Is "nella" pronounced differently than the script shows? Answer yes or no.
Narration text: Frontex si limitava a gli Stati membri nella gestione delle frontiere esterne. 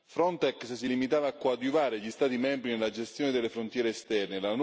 no